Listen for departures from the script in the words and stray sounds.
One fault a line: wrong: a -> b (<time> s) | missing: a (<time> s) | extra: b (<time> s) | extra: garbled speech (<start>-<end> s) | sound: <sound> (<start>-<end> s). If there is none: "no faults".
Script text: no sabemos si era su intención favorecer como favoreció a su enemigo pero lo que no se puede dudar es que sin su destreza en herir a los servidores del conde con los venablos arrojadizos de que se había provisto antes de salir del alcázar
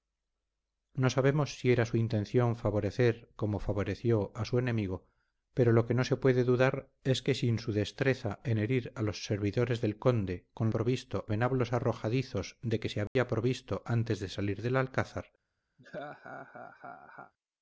wrong: los -> provisto (10.7 s)
sound: dropout (13.1-13.2 s)
sound: laugh (15.8-17.3 s)